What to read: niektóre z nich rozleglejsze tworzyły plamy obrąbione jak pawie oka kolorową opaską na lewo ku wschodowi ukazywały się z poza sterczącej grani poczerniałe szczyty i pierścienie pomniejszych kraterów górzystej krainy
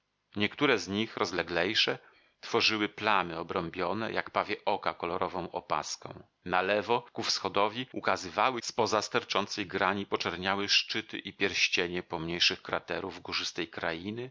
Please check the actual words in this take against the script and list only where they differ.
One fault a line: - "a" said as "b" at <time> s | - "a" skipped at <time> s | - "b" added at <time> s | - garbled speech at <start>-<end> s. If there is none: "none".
- "się" skipped at 8.6 s